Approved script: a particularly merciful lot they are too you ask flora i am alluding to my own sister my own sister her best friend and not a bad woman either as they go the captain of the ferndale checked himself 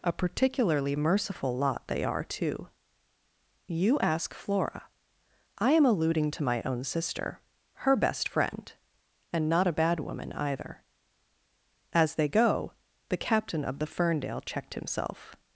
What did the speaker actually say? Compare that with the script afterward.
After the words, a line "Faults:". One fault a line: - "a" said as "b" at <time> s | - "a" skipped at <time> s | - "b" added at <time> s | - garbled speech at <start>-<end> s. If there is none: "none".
a particularly merciful lot they are too you ask flora i am alluding to my own sister her best friend and not a bad woman either as they go the captain of the ferndale checked himself
Faults:
- "my own sister" skipped at 7.4 s